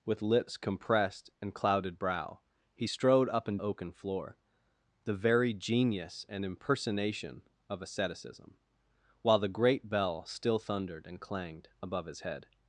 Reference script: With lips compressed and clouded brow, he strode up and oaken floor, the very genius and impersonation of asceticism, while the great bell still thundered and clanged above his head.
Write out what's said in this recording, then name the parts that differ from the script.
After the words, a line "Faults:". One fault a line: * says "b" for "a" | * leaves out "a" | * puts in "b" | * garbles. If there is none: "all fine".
With lips compressed and clouded brow, he strode up and oaken floor, the very genius and impersonation of asceticism, while the great bell still thundered and clanged above his head.
Faults:
all fine